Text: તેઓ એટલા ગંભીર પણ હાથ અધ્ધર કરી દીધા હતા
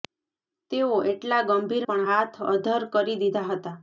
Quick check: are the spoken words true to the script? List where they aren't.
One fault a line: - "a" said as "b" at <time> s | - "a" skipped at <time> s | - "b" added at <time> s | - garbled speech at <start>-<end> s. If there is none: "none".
none